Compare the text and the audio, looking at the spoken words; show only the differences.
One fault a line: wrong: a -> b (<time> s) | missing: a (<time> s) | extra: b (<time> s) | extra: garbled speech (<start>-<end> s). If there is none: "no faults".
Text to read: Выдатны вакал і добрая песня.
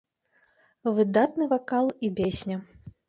missing: добрая (2.1 s)